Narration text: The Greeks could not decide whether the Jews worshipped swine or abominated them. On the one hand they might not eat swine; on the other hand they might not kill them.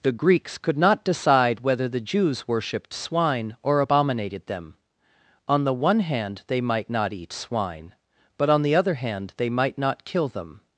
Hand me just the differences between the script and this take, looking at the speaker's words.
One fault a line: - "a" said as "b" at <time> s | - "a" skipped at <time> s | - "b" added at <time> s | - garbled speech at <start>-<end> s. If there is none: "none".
- "but" added at 8.4 s